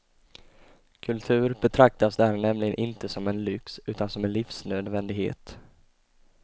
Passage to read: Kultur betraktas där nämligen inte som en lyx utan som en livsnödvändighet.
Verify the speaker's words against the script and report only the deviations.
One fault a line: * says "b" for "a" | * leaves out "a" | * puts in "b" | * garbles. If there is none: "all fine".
all fine